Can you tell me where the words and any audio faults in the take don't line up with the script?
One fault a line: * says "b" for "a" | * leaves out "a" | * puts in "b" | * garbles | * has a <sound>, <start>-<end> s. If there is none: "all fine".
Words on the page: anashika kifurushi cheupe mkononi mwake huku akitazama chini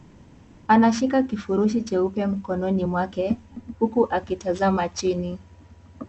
all fine